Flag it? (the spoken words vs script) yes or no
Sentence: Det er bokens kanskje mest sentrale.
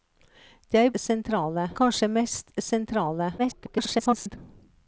yes